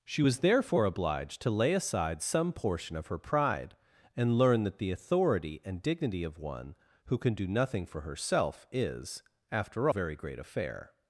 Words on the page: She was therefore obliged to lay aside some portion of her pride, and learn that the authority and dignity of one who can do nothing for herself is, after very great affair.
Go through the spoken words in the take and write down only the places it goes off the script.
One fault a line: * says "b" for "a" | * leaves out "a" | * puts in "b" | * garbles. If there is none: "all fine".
all fine